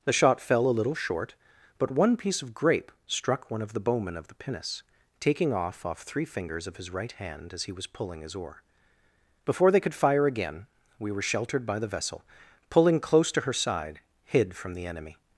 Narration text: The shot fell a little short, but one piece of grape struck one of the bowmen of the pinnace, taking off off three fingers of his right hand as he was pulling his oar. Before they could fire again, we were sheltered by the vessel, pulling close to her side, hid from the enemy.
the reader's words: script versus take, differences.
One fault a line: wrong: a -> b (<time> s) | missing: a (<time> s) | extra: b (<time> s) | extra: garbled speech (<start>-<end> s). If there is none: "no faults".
no faults